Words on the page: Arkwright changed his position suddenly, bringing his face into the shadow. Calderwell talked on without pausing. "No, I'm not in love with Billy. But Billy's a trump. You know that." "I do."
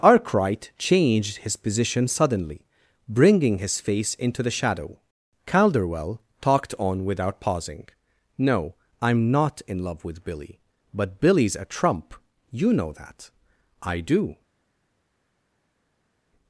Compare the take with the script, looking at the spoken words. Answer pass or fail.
pass